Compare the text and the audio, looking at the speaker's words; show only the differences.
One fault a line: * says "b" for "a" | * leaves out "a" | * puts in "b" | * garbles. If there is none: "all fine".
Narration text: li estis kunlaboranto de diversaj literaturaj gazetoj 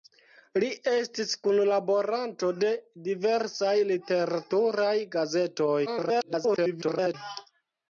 * garbles